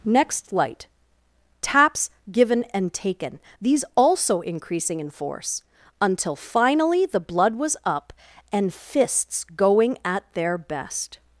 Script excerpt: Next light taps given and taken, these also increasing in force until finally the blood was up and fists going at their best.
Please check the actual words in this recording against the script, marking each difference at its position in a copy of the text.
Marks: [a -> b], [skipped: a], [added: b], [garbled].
Next light taps given and taken, these also increasing in force until finally the blood was up and fists going at their best.